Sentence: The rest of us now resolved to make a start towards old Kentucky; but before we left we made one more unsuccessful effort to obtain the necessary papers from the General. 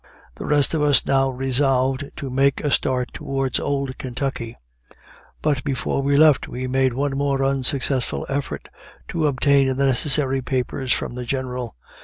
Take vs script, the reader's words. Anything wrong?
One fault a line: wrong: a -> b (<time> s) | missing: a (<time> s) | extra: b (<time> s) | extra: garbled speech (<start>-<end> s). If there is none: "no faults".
no faults